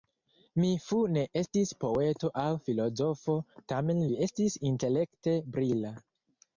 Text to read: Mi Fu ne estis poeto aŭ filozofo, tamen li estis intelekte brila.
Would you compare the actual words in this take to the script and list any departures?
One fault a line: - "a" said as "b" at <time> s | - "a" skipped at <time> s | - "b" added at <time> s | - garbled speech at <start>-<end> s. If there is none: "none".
none